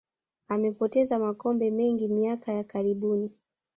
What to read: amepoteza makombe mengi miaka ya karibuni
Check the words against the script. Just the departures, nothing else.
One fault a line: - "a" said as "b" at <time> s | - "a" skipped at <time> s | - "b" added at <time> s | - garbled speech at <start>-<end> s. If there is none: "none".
none